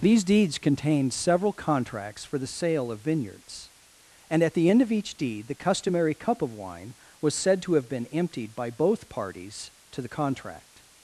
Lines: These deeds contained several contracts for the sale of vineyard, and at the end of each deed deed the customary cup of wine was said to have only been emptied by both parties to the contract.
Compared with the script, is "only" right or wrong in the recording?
wrong